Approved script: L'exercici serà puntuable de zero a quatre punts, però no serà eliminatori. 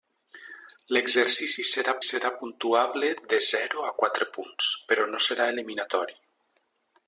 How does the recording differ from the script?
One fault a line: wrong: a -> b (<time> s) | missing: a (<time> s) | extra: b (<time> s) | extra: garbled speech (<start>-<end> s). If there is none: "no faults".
extra: serà (2.1 s)